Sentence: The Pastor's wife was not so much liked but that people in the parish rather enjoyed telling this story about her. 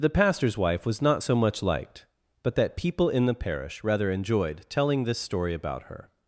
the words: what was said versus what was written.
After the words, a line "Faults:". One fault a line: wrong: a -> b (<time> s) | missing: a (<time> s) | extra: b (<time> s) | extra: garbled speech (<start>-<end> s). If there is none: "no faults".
The Pastor's wife was not so much liked but that people in the parish rather enjoyed telling this story about her.
Faults:
no faults